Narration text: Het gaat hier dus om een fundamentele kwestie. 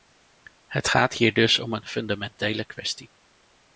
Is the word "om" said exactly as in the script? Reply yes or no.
yes